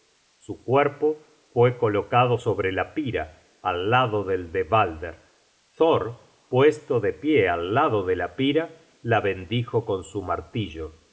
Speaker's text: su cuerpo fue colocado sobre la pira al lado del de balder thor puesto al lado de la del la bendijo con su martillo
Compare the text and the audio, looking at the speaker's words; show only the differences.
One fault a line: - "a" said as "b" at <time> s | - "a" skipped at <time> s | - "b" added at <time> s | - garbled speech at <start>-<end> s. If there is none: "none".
- "de pie" added at 7.0 s
- "del" said as "pira" at 8.3 s